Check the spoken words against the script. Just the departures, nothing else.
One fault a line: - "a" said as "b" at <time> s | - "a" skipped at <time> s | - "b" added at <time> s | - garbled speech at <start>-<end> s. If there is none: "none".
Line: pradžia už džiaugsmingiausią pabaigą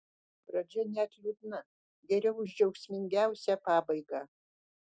- "net liūdna geriau" added at 0.9 s